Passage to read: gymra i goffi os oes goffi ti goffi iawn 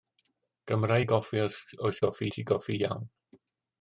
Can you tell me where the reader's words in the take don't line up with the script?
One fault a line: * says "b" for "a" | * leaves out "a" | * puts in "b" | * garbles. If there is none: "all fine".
all fine